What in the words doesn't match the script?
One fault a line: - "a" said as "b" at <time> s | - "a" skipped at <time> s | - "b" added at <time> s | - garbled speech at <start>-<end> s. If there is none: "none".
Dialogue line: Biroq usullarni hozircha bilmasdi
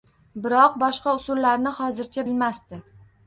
- "boshqa" added at 0.8 s